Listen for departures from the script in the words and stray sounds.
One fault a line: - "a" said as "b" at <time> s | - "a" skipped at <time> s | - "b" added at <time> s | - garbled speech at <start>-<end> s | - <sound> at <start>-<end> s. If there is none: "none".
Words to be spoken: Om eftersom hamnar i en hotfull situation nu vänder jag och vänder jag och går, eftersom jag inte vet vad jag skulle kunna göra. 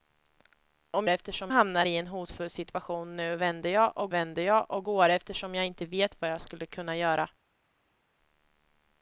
none